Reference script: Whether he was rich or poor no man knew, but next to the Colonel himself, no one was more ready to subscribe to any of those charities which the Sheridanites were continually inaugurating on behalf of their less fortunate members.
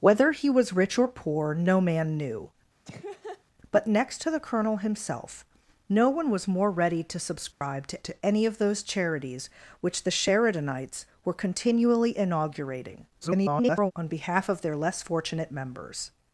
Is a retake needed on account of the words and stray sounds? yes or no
yes